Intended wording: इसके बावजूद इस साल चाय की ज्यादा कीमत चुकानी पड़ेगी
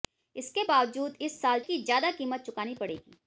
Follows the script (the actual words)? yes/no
no